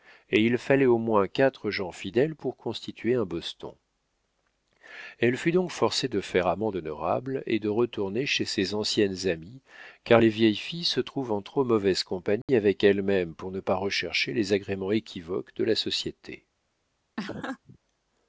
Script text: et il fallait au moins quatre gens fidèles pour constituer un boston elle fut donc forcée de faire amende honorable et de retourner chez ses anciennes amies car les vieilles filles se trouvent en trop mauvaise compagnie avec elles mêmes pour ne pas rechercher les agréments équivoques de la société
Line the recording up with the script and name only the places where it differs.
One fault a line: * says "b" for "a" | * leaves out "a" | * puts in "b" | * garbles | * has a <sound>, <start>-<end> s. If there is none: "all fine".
* has a dropout, 12.4-12.5 s
* has a laugh, 17.2-17.8 s